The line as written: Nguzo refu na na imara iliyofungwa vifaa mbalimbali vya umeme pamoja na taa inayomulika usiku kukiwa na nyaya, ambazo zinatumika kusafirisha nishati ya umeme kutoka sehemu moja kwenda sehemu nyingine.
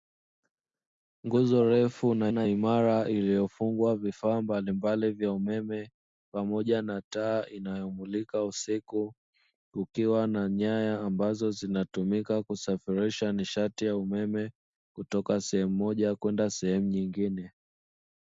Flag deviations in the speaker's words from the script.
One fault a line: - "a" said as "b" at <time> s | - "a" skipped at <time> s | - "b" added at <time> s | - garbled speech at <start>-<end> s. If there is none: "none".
none